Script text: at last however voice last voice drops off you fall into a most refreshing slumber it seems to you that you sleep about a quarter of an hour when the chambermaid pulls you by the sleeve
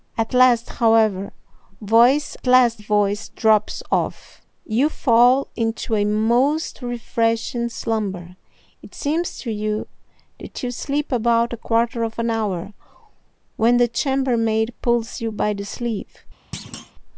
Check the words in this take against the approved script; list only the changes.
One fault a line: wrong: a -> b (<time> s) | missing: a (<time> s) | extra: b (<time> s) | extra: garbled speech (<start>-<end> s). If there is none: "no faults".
no faults